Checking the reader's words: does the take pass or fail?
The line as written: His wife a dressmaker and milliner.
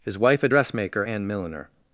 pass